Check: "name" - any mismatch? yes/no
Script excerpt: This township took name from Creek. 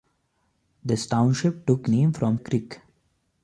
no